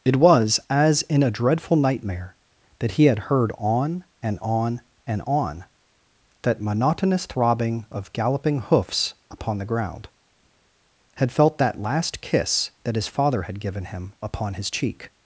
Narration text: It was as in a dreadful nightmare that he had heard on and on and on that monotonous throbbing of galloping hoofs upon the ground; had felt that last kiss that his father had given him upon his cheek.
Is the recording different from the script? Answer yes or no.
no